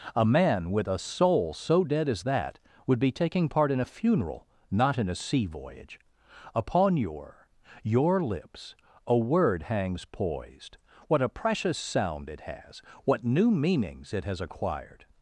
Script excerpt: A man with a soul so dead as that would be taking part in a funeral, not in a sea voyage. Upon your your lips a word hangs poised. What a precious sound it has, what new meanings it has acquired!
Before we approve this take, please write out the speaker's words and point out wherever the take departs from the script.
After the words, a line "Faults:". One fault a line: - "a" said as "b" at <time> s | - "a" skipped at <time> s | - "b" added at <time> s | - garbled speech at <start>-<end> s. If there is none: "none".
A man with a soul so dead as that would be taking part in a funeral, not in a sea voyage. Upon your your lips a word hangs poised. What a precious sound it has, what new meanings it has acquired!
Faults:
none